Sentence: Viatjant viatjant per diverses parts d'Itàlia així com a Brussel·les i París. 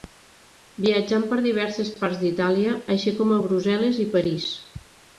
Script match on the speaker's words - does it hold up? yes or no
no